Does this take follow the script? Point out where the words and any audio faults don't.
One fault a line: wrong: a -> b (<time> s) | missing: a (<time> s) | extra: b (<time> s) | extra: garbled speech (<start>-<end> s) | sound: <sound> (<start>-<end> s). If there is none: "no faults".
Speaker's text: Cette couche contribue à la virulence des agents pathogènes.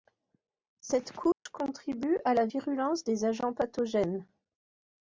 sound: dropout (1.3-1.5 s)